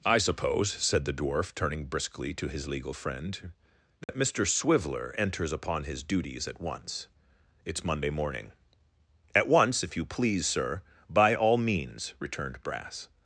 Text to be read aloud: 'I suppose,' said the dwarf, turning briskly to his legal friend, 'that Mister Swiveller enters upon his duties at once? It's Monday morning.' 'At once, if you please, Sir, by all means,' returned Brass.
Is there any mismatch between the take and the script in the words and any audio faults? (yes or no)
yes